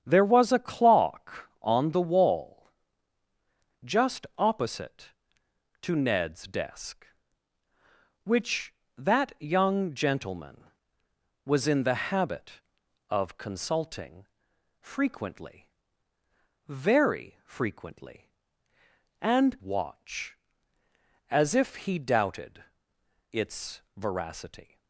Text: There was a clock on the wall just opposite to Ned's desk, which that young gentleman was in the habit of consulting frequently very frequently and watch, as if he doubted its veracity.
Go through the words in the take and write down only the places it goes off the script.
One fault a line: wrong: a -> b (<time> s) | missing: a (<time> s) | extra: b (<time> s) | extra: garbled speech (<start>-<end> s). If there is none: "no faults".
no faults